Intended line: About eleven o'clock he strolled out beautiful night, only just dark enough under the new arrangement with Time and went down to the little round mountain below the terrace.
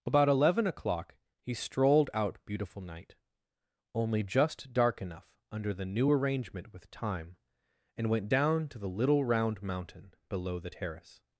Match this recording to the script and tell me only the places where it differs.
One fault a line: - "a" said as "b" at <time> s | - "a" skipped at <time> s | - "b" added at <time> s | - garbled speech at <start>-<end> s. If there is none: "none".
none